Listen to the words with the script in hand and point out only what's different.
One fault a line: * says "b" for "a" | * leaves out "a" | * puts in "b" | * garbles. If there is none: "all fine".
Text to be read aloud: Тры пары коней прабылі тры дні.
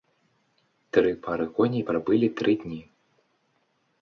all fine